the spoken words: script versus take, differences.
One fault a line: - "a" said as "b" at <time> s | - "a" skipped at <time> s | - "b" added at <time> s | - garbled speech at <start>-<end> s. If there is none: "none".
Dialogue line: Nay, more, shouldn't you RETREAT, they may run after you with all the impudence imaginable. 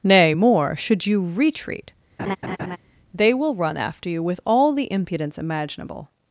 - "shouldn't" said as "should" at 0.8 s
- "may" said as "will" at 3.3 s